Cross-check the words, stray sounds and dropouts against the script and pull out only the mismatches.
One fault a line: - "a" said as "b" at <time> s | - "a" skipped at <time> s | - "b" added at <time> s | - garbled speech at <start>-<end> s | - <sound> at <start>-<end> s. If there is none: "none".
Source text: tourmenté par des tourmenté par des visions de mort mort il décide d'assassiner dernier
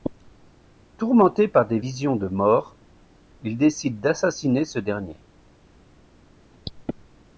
- "tourmenté par des" skipped at 1.8 s
- "mort" skipped at 2.8 s
- "ce" added at 4.6 s